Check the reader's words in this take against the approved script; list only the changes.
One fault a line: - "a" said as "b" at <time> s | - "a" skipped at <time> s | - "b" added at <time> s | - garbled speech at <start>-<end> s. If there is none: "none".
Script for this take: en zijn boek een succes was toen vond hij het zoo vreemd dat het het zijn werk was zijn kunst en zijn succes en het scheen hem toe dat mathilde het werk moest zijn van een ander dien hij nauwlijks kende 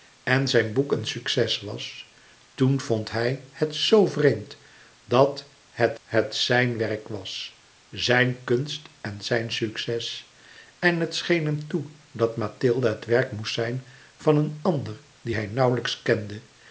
none